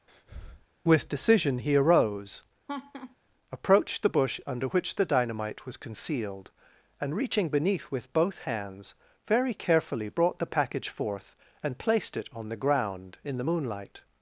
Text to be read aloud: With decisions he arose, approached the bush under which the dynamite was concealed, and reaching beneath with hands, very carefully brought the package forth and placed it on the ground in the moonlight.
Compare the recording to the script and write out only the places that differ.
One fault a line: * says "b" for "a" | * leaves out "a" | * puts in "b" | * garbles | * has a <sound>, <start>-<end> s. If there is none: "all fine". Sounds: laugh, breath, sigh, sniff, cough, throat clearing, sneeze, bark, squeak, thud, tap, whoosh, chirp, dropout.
* has a breath, 0.1-0.7 s
* says "decision" for "decisions"
* has a laugh, 2.7-3.2 s
* puts in "both"